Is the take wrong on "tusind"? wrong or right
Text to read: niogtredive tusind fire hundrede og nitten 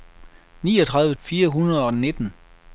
wrong